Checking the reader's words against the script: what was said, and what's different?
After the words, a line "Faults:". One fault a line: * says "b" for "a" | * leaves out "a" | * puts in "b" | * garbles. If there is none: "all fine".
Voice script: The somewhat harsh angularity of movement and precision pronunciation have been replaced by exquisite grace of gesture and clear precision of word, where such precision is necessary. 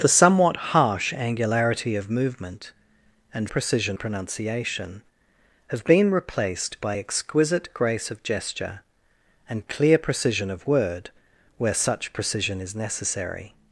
The somewhat harsh angularity of movement and precision pronunciation have been replaced by exquisite grace of gesture and clear precision of word, where such precision is necessary.
Faults:
all fine